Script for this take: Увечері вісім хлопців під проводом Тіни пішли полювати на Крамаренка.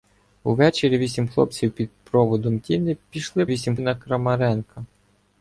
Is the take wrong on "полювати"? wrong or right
wrong